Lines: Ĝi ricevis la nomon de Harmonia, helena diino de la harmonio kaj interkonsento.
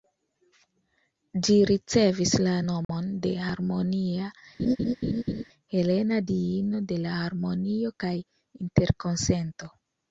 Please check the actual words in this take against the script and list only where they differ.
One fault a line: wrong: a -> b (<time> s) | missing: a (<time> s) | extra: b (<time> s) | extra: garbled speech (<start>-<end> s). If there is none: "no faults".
no faults